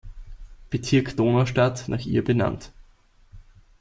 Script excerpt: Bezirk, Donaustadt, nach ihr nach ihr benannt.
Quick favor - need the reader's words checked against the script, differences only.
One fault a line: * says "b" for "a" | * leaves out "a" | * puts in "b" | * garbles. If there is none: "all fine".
* leaves out "nach ihr"